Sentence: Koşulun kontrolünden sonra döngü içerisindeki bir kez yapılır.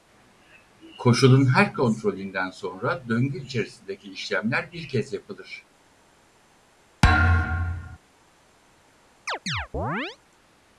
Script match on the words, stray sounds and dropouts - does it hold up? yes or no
no